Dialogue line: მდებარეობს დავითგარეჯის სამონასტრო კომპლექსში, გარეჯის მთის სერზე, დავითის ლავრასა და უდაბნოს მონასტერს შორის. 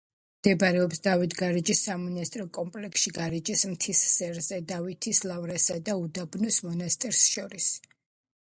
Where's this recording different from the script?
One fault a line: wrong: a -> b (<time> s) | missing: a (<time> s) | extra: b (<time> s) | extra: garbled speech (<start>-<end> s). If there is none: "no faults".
no faults